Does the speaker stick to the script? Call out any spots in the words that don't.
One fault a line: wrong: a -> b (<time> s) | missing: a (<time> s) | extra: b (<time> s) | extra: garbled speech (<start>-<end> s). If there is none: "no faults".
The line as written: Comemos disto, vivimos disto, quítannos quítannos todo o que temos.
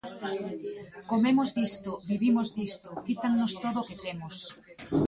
missing: quítannos (3.5 s)